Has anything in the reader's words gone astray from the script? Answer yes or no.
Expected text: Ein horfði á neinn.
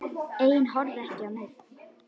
yes